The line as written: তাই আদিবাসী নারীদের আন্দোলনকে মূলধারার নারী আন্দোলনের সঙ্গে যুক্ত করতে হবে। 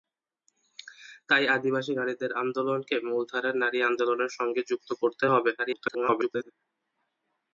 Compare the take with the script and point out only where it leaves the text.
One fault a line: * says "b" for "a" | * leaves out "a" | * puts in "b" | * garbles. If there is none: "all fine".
* garbles